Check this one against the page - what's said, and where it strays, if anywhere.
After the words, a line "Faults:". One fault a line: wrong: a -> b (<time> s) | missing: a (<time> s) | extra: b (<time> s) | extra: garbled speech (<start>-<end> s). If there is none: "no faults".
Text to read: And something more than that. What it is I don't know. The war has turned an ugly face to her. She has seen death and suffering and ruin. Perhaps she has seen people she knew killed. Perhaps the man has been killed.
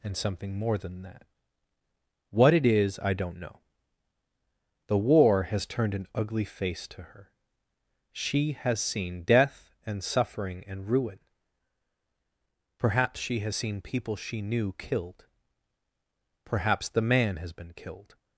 And something more than that. What it is I don't know. The war has turned an ugly face to her. She has seen death and suffering and ruin. Perhaps she has seen people she knew killed. Perhaps the man has been killed.
Faults:
no faults